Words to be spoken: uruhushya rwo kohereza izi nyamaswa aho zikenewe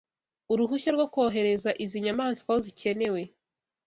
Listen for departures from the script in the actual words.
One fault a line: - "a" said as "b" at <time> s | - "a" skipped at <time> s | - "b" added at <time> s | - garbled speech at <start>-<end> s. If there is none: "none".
none